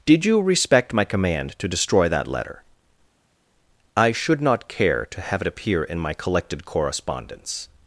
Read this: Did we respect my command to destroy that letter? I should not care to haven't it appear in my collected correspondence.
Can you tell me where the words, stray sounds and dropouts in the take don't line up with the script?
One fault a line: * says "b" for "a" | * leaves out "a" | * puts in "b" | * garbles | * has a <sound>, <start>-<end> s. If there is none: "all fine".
* says "you" for "we"
* says "have" for "haven't"